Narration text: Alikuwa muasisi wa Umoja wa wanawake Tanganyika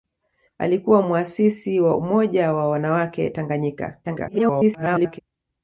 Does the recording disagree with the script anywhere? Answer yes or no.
yes